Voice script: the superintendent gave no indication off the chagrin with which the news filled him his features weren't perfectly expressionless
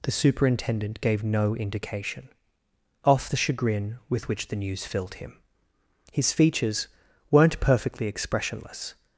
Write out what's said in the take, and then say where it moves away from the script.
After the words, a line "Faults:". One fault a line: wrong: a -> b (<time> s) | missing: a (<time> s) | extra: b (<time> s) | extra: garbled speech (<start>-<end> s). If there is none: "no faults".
the superintendent gave no indication off the chagrin with which the news filled him his features weren't perfectly expressionless
Faults:
no faults